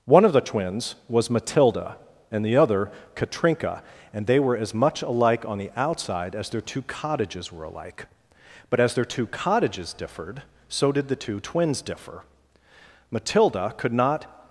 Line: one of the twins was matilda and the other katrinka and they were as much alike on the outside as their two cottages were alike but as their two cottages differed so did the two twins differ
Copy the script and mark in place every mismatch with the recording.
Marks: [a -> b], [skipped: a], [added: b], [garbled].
one of the twins was matilda and the other katrinka and they were as much alike on the outside as their two cottages were alike but as their two cottages differed so did the two twins differ [added: matilda could not]